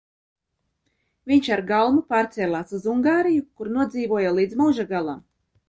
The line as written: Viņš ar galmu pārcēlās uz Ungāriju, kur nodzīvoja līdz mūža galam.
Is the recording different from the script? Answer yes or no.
no